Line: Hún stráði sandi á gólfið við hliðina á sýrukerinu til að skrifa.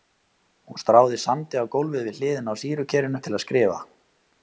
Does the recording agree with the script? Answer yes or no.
yes